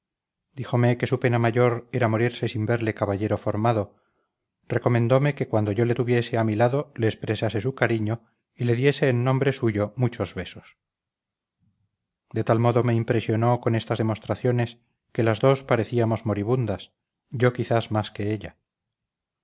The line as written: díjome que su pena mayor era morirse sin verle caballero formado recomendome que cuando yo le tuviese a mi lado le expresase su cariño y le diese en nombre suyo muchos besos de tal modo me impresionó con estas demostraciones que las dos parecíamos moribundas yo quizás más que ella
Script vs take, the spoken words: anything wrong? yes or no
no